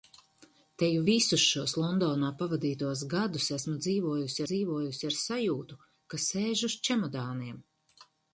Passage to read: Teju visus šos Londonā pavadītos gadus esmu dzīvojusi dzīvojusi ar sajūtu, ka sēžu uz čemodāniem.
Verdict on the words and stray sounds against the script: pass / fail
pass